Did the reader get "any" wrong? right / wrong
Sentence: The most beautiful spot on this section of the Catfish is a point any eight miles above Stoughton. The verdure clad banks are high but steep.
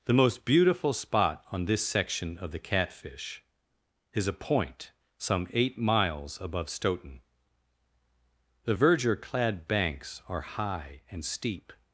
wrong